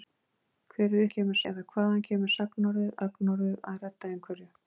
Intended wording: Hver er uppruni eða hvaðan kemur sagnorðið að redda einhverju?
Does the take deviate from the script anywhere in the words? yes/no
yes